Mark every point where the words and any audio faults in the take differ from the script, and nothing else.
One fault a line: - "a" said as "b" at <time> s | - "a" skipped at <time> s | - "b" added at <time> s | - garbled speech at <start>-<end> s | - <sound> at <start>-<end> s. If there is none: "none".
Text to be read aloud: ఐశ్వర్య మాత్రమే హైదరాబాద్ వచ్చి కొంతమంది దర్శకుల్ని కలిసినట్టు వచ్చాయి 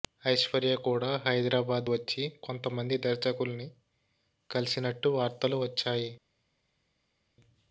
- "మాత్రమే" said as "కూడా" at 0.8 s
- "వార్తలు" added at 5.2 s